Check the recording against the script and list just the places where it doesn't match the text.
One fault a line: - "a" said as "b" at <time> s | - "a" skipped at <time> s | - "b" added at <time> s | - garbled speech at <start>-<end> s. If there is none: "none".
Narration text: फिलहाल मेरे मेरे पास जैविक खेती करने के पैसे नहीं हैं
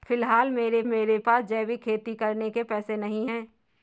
none